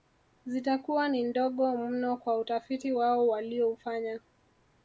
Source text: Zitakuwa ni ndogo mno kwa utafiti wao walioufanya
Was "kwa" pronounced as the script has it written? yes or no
yes